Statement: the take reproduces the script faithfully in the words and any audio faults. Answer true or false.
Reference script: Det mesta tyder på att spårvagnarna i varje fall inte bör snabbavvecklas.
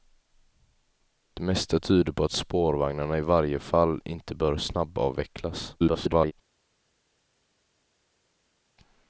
false